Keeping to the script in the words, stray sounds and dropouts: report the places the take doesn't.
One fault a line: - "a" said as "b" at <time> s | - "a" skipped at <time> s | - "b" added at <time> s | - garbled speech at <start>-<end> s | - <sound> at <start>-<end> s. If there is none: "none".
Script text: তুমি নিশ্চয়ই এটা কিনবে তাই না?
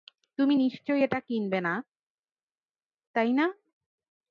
- "না" added at 1.6 s